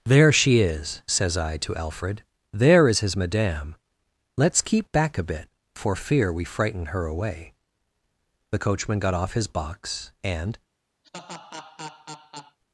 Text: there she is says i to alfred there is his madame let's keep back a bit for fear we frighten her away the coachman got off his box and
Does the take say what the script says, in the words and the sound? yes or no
no